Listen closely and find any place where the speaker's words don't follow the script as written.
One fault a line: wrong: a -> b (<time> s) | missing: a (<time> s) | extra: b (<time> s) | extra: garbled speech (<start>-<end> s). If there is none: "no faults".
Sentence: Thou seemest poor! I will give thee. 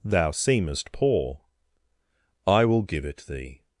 extra: it (3.0 s)